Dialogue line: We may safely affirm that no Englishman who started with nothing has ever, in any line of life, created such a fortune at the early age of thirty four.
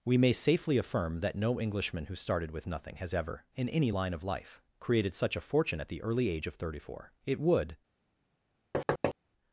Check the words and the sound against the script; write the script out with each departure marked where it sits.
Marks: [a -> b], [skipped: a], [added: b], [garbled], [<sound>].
We may safely affirm that no Englishman who started with nothing has ever, in any line of life, created such a fortune at the early age of thirty four. [added: It would] [thud]